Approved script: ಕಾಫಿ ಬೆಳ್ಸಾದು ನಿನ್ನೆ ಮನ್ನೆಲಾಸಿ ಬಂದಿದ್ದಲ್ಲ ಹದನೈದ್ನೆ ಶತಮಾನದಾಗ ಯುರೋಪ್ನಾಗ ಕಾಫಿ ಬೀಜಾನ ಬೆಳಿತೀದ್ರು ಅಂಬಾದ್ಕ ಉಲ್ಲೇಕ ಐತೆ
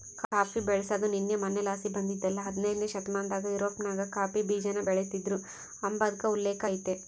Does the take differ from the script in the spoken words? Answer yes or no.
no